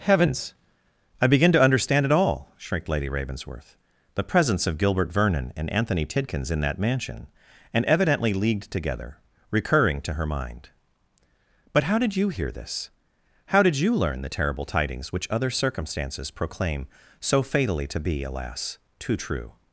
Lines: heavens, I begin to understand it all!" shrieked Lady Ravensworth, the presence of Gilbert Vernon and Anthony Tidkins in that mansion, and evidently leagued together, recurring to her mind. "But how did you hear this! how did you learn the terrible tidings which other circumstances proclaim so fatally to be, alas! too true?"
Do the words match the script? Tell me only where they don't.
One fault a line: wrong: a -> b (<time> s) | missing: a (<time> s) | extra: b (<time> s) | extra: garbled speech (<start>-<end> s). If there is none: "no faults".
no faults